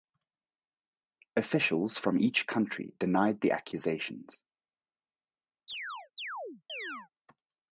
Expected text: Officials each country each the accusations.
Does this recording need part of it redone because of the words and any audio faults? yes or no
yes